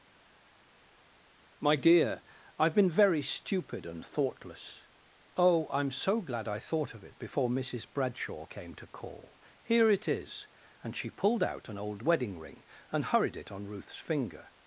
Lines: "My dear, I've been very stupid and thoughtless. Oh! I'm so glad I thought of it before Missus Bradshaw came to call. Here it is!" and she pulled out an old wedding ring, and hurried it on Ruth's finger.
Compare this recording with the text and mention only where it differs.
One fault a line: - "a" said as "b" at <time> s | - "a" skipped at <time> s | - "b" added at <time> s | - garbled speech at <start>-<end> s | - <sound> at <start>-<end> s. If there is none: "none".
none